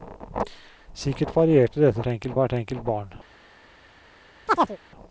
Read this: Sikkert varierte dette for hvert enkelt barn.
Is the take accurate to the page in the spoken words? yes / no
no